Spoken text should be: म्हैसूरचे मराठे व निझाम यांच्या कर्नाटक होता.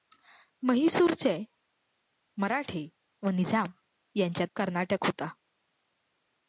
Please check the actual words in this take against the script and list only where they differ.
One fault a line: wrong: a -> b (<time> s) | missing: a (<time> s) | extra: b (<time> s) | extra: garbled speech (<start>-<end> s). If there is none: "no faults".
no faults